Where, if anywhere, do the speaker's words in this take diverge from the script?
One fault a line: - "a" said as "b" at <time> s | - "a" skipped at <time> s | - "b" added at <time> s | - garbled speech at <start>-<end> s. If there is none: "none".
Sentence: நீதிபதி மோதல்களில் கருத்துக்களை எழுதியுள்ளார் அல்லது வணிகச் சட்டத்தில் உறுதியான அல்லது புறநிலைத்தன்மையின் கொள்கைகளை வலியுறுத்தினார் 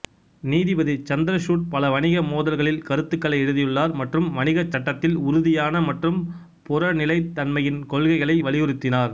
- "சந்திரசூட் பல வணிக" added at 1.1 s
- "அல்லது" said as "மற்றும்" at 4.0 s
- "அல்லது" said as "மற்றும்" at 5.9 s